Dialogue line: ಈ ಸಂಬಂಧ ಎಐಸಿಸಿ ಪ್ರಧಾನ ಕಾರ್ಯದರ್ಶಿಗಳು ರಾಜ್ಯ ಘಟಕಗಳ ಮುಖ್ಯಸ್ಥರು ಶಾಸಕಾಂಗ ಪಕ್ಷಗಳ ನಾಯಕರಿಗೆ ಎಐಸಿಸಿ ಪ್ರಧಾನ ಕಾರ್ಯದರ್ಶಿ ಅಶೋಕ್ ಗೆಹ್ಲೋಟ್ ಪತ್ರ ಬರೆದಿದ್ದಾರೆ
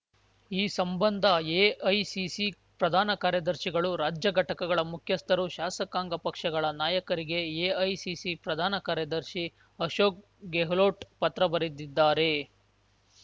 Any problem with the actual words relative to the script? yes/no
no